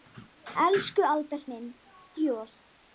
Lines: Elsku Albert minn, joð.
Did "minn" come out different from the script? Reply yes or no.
no